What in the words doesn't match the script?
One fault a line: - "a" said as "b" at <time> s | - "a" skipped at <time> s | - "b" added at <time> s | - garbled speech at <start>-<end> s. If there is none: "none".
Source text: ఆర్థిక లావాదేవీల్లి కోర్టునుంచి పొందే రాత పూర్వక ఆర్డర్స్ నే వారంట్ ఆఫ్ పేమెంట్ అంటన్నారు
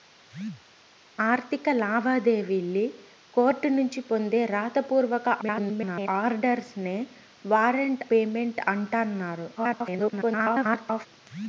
- garbled speech at 5.4-6.1 s
- "ఆఫ్" skipped at 8.0 s
- garbled speech at 9.6-11.1 s